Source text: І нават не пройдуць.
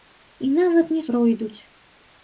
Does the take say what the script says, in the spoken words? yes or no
yes